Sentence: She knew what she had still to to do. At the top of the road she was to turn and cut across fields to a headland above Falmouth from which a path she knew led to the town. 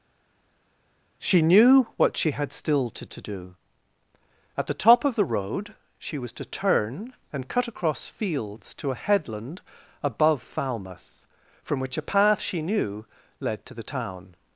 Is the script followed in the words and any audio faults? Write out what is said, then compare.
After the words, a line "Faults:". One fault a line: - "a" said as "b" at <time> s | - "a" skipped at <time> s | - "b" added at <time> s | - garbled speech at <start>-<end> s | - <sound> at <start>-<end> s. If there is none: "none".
She knew what she had still to to do. At the top of the road she was to turn and cut across fields to a headland above Falmouth from which a path she knew led to the town.
Faults:
none